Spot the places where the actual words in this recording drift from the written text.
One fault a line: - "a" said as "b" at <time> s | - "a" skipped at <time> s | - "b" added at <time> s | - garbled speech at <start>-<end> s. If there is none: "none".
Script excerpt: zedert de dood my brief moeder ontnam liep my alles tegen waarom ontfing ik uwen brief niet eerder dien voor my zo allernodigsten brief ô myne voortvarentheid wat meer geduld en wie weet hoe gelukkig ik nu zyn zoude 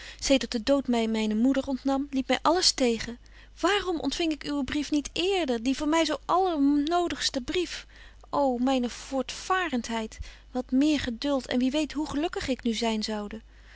- "brief" said as "myne" at 1.1 s